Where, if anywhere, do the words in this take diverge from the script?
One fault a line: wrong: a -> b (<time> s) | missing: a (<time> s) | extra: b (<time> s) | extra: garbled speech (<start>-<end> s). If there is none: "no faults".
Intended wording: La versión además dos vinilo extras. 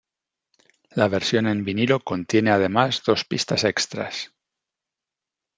extra: en vinilo contiene (1.4 s)
wrong: vinilo -> pistas (3.2 s)